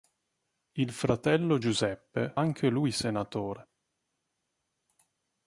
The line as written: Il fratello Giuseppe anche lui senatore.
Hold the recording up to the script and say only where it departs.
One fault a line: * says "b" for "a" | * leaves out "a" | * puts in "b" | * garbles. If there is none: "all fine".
all fine